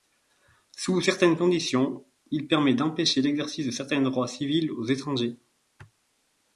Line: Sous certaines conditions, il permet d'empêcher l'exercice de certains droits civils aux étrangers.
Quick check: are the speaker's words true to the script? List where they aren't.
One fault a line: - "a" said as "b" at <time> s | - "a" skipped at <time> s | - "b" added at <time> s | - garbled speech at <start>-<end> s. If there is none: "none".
none